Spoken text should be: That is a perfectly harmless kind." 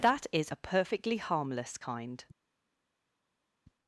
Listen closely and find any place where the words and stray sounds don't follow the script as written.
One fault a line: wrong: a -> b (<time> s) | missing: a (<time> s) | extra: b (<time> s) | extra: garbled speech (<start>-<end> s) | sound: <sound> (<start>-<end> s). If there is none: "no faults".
no faults